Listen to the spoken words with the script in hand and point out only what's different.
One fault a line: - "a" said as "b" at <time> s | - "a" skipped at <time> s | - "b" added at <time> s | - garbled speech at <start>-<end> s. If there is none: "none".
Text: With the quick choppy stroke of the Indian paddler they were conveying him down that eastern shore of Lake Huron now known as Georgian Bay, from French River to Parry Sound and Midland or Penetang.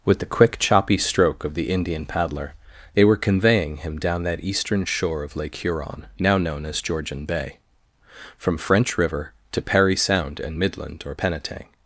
none